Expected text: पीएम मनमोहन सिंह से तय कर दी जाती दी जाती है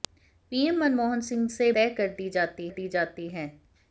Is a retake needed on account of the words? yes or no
no